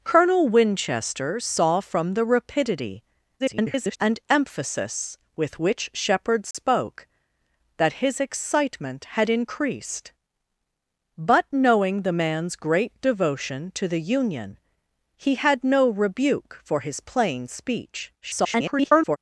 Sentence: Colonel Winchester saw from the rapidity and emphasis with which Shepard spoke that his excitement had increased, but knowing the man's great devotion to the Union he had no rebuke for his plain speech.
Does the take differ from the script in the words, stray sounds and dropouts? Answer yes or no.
yes